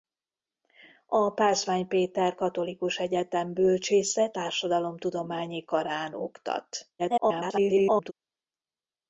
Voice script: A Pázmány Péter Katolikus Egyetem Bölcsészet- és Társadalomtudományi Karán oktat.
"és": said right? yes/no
no